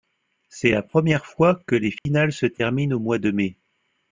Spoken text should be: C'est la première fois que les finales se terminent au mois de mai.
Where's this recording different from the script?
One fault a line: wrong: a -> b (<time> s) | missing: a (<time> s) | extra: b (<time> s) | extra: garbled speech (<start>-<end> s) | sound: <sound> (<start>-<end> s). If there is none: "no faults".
sound: dropout (2.0-2.1 s)